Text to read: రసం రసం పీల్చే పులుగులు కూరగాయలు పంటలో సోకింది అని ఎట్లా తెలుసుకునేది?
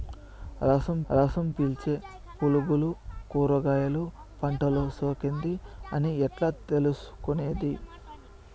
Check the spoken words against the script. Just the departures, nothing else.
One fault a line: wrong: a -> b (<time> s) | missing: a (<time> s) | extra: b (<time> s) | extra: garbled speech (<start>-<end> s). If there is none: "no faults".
no faults